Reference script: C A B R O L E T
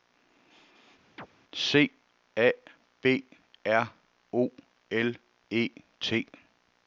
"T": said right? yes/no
yes